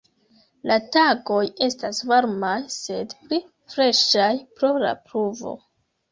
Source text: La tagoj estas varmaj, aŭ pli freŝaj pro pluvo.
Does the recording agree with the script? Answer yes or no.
no